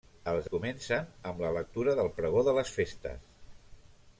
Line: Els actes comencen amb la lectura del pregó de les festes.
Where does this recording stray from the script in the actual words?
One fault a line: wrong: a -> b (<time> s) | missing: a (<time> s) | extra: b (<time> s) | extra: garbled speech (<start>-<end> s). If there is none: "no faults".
missing: actes (0.5 s)